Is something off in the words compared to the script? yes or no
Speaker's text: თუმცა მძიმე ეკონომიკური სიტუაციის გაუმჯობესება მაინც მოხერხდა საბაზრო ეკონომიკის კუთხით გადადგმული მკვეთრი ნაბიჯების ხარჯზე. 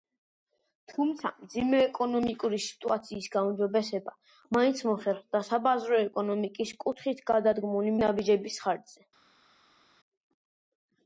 yes